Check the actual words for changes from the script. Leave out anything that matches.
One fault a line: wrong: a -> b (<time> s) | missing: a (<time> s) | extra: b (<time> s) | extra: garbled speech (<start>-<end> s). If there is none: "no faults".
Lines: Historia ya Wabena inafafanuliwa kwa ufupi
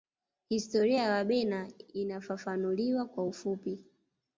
no faults